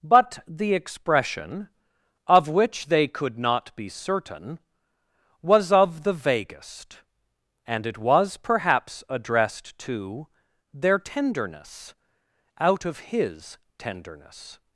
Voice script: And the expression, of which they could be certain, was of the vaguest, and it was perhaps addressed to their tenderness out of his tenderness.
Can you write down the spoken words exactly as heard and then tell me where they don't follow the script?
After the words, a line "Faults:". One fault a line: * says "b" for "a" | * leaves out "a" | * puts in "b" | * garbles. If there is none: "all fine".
But the expression, of which they could not be certain, was of the vaguest, and it was perhaps addressed to their tenderness out of his tenderness.
Faults:
* says "But" for "And"
* puts in "not"